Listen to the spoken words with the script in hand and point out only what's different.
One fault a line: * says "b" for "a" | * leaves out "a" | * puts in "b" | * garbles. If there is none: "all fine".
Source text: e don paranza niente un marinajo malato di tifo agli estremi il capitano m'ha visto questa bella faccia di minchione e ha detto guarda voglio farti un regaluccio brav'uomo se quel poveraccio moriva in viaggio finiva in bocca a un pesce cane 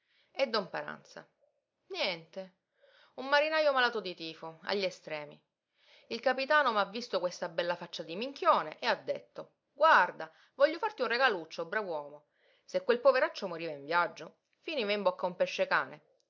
all fine